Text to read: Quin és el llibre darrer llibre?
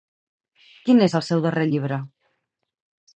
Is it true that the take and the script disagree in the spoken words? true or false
true